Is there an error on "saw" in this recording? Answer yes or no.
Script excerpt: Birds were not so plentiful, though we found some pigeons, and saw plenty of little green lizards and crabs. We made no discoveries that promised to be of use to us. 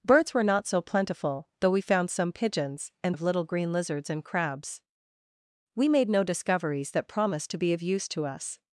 yes